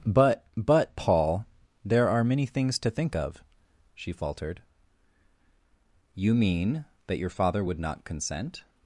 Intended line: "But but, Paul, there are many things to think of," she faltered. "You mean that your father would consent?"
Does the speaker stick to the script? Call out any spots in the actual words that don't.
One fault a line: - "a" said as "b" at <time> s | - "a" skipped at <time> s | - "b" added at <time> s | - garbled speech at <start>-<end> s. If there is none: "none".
- "not" added at 7.8 s